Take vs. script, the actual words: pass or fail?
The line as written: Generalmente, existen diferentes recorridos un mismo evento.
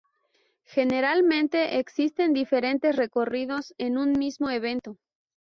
fail